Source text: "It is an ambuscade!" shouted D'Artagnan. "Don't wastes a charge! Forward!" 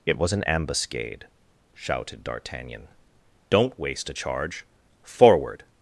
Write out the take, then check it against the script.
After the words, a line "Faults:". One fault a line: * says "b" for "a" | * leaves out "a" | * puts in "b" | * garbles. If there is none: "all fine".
"It was an ambuscade!" shouted D'Artagnan. "Don't waste a charge! Forward!"
Faults:
* says "was" for "is"
* says "waste" for "wastes"